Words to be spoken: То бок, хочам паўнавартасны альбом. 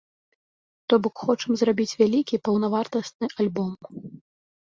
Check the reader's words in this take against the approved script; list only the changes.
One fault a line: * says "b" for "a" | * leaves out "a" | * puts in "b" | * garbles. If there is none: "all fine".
* puts in "зрабіць вялікі"